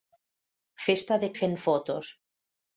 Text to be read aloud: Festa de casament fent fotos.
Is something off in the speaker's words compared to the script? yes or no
yes